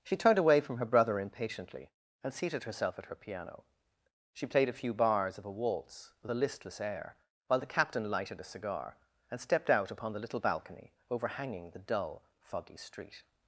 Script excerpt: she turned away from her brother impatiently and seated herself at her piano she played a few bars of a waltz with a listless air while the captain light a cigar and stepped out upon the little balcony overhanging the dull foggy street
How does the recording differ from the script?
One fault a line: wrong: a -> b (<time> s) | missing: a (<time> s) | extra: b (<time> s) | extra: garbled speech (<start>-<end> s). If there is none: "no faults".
wrong: light -> lighted (8.1 s)